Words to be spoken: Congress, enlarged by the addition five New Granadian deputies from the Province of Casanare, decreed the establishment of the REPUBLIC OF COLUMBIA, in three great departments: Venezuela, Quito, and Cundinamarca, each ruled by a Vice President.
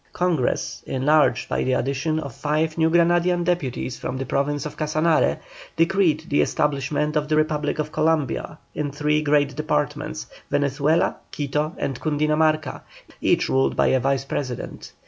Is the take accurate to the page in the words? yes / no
no